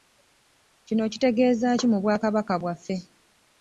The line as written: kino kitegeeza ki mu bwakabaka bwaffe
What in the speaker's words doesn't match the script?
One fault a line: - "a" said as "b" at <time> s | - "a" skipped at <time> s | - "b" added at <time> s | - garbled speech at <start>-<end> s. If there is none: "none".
none